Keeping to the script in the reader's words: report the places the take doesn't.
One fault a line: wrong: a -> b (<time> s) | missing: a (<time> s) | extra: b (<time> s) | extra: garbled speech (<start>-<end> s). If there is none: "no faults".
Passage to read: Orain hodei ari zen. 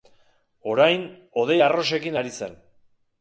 extra: arrosekin (1.6 s)